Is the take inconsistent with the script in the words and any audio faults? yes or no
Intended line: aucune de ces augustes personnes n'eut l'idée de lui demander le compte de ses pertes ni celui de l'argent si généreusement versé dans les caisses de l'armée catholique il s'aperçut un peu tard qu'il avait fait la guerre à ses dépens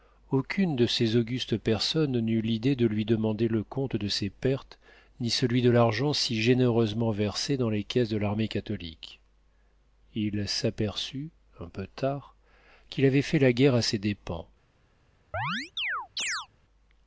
yes